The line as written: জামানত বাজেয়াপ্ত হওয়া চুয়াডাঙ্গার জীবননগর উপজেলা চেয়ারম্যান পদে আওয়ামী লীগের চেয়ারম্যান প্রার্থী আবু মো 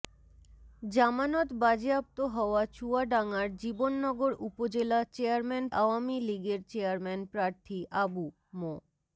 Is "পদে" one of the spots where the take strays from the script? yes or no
yes